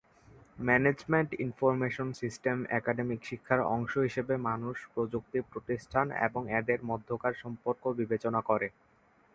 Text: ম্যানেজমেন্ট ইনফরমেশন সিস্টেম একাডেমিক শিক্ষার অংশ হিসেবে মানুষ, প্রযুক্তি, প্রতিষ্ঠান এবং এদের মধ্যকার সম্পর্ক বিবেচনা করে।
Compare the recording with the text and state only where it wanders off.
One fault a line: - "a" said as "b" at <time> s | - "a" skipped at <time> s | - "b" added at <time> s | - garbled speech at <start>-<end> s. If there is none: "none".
none